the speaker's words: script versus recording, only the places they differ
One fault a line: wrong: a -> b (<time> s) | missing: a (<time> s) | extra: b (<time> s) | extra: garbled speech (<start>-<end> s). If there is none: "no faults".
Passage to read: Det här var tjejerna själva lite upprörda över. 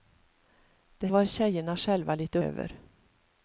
missing: här (1.1 s)
missing: upprörda (2.4 s)